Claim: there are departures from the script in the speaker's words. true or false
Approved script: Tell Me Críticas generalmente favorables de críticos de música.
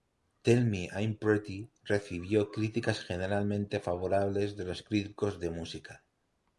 true